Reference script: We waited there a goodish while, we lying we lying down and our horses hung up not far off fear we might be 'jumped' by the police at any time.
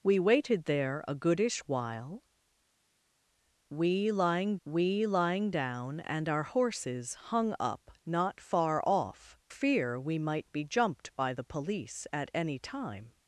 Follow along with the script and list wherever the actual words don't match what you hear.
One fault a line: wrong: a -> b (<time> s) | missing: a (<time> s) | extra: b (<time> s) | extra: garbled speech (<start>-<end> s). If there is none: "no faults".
no faults